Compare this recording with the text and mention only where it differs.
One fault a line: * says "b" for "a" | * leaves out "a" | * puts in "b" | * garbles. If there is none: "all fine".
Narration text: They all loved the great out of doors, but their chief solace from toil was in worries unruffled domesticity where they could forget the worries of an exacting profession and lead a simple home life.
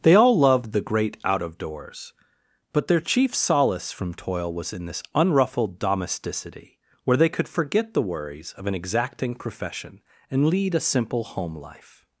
* says "this" for "worries"